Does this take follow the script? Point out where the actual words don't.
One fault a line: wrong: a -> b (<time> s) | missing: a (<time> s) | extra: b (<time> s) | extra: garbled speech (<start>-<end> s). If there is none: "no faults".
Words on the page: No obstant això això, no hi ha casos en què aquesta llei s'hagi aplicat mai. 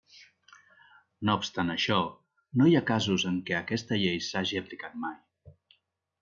missing: això (2.0 s)